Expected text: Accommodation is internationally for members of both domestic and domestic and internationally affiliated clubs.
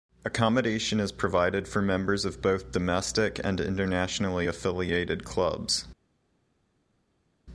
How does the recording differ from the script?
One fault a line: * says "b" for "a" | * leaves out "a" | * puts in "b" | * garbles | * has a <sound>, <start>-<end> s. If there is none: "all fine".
* says "provided" for "internationally"
* leaves out "domestic and"